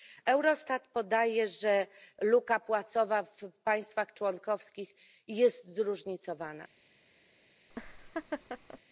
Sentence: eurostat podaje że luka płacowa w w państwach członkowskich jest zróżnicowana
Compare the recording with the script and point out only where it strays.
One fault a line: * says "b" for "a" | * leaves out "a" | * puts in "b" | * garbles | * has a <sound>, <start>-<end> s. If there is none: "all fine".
* leaves out "w"
* has a laugh, 7.7-8.8 s